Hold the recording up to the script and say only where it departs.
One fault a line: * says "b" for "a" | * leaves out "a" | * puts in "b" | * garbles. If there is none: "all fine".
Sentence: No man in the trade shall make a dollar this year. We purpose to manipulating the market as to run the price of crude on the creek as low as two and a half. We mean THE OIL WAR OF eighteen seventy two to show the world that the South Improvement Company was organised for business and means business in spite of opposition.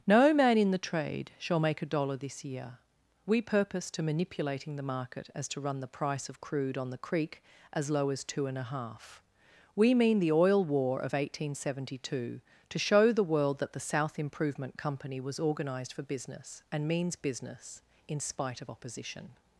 all fine